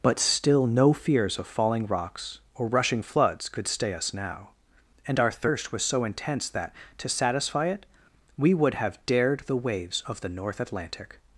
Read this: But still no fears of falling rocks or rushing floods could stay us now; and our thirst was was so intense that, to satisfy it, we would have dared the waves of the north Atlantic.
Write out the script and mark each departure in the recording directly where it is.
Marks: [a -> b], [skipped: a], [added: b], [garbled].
But still no fears of falling rocks or rushing floods could stay us now; and our thirst was [skipped: was] so intense that, to satisfy it, we would have dared the waves of the north Atlantic.